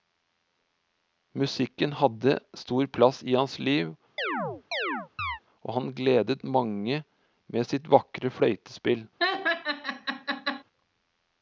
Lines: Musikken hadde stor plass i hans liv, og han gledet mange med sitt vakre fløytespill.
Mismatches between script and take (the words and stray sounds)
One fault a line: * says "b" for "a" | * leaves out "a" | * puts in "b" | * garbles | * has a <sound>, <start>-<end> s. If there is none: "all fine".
* has a chirp, 4.2-5.4 s
* has a laugh, 9.2-10.6 s